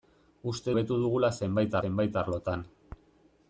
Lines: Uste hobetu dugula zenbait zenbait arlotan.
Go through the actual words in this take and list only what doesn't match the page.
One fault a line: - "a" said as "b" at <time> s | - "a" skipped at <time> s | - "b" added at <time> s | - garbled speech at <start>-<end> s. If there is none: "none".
none